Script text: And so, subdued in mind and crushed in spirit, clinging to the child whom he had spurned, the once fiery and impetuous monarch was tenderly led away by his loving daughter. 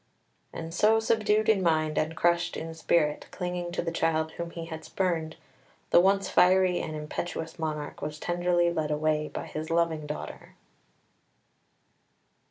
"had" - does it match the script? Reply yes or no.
yes